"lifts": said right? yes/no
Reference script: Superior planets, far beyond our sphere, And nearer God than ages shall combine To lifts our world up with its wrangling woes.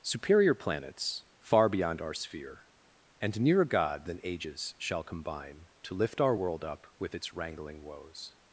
no